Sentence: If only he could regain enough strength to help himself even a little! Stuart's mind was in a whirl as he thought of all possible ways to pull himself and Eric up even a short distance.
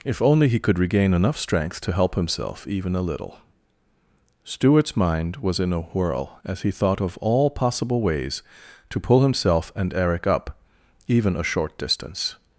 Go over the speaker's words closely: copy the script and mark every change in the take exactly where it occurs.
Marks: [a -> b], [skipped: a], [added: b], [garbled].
If only he could regain enough strength to help himself even a little! Stuart's mind was in a whirl as he thought of all possible ways to pull himself and Eric up even a short distance.